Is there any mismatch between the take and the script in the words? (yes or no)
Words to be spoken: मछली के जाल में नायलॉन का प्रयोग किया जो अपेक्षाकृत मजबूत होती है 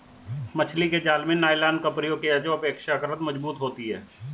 no